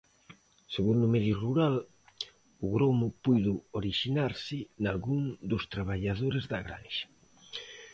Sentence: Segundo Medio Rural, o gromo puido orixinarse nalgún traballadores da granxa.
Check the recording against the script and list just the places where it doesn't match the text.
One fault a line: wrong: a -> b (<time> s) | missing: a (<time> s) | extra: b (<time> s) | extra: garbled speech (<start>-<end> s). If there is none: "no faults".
extra: dos (5.5 s)